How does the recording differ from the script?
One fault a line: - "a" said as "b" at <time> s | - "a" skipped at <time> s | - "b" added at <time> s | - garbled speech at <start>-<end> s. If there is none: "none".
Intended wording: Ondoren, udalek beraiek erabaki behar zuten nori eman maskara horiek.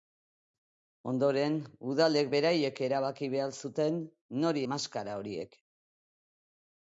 - "eman" skipped at 4.6 s